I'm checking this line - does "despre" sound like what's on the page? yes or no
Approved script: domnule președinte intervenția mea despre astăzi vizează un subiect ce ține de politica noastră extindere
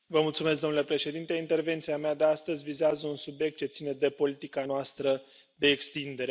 no